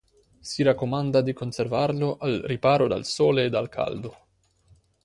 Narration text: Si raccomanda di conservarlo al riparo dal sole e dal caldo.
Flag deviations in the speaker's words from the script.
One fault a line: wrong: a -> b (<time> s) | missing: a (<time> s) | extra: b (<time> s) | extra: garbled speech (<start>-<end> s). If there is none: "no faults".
no faults